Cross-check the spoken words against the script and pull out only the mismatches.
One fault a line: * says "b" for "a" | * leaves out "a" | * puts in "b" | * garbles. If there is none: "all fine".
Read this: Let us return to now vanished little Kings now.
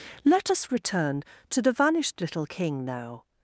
* says "the" for "now"
* says "King" for "Kings"